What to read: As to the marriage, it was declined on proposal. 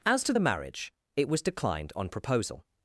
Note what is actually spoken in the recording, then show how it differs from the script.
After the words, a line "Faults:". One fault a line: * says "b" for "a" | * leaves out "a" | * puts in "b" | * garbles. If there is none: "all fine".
As to the marriage, it was declined on proposal.
Faults:
all fine